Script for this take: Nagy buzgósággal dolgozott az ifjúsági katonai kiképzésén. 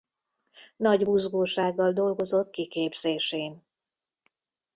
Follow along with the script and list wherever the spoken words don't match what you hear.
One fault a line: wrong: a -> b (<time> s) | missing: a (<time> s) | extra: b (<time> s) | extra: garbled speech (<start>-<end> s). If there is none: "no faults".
missing: az ifjúsági katonai (2.6 s)